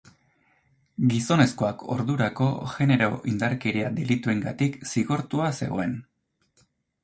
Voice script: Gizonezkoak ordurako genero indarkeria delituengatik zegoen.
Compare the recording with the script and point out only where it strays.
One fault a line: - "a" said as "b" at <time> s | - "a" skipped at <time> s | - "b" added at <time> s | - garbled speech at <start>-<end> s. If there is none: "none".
- "zigortua" added at 4.9 s